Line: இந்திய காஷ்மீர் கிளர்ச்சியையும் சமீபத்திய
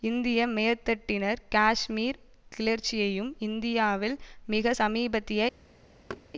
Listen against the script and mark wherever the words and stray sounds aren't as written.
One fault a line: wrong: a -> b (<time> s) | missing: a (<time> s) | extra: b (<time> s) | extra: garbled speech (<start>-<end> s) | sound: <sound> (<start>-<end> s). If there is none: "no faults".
extra: மேற்தட்டினர் (0.5 s)
extra: இந்தியாவில் மிக (3.4 s)
sound: thud (6.1-6.3 s)